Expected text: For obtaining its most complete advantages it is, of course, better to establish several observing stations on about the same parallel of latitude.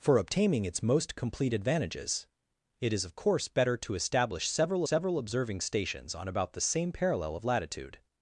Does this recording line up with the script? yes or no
no